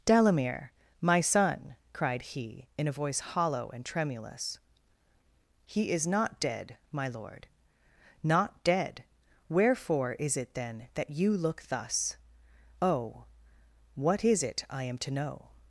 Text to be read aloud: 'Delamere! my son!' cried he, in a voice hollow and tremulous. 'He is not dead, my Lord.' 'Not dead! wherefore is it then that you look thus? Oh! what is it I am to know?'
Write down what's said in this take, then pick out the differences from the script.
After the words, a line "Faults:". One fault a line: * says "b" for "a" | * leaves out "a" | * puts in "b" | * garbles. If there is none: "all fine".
'Delamere! my son!' cried he, in a voice hollow and tremulous. 'He is not dead, my Lord.' 'Not dead! wherefore is it then that you look thus? Oh! what is it I am to know?'
Faults:
all fine